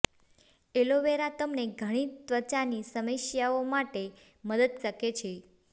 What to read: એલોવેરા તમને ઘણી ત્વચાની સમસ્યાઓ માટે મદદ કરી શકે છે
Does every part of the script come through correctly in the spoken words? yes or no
no